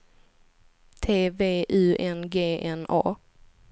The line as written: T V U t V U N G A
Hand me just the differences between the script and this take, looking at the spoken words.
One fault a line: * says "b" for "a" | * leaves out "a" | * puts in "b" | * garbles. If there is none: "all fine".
* says "N G" for "t V U"
* leaves out "G"